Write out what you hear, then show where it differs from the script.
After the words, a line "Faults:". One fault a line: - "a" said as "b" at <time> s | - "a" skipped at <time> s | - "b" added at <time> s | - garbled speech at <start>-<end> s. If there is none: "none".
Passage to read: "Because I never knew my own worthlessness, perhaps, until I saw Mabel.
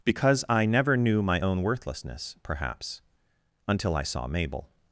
"Because I never knew my own worthlessness, perhaps, until I saw Mabel.
Faults:
none